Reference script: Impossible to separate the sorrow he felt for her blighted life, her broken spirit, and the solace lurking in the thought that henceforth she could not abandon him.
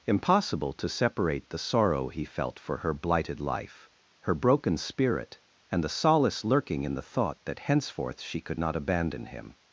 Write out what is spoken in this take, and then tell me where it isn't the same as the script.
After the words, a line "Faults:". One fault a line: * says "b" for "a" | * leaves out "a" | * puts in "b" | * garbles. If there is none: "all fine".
Impossible to separate the sorrow he felt for her blighted life, her broken spirit, and the solace lurking in the thought that henceforth she could not abandon him.
Faults:
all fine